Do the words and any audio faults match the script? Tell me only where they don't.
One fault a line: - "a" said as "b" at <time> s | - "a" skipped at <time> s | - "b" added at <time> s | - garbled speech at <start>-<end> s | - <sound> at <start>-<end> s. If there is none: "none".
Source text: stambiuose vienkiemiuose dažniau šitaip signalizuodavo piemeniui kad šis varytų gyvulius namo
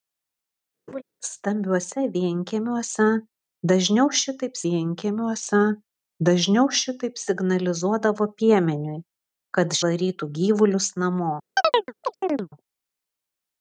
- laugh at 0.9-1.0 s
- "vienkiemiuose dažniau šitaip" added at 4.7 s
- "šis" skipped at 9.8 s
- chirp at 11.6-12.5 s